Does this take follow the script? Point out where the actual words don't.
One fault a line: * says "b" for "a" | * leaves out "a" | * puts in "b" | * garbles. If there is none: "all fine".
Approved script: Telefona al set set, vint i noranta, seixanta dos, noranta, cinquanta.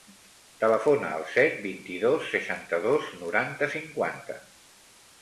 * leaves out "set"
* says "dos" for "noranta"